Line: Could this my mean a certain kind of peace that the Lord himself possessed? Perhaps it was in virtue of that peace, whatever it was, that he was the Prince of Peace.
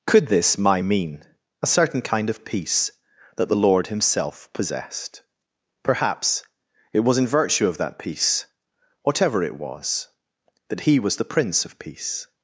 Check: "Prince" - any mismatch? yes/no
no